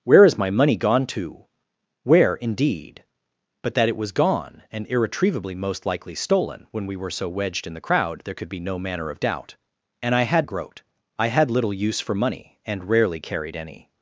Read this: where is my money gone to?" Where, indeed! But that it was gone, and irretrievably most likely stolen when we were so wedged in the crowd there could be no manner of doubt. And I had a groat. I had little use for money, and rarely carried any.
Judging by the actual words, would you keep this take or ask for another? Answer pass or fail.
pass